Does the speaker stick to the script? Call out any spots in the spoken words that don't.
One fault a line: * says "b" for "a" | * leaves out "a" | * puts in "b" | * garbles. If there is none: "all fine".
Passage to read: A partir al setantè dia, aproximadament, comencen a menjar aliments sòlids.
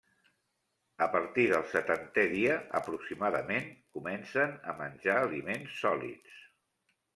* says "del" for "al"